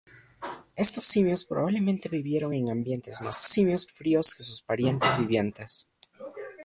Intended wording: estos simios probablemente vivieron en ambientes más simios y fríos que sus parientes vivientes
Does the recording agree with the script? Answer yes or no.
yes